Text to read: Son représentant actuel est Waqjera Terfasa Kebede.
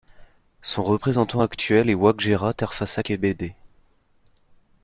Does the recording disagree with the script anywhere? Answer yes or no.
no